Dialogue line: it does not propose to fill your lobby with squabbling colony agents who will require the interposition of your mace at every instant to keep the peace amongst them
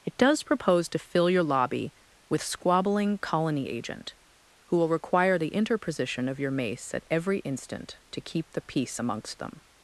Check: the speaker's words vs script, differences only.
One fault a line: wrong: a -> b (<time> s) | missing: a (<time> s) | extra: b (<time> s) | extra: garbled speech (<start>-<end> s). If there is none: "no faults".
missing: not (0.4 s)
wrong: agents -> agent (3.7 s)